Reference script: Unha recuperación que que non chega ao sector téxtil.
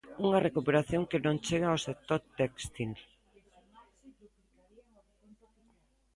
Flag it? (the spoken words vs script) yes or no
yes